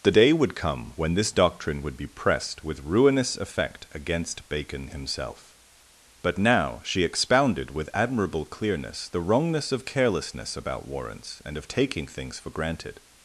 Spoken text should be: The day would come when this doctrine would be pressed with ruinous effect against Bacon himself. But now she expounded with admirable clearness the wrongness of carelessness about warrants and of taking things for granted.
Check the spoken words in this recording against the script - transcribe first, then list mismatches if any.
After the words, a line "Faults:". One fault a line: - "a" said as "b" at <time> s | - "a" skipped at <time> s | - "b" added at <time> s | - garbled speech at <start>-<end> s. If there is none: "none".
The day would come when this doctrine would be pressed with ruinous effect against Bacon himself. But now she expounded with admirable clearness the wrongness of carelessness about warrants and of taking things for granted.
Faults:
none